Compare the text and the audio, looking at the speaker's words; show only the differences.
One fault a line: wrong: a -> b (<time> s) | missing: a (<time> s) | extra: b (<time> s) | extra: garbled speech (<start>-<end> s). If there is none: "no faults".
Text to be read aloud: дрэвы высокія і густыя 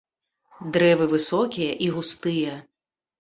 no faults